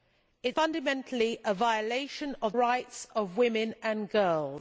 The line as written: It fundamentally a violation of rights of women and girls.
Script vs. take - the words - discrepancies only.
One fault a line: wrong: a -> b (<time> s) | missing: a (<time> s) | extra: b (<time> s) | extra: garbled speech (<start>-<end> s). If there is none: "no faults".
no faults